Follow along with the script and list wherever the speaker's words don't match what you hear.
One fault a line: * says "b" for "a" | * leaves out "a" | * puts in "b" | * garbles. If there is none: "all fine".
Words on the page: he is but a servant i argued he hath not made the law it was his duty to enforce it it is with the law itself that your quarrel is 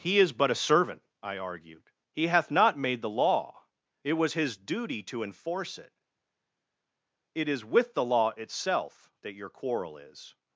all fine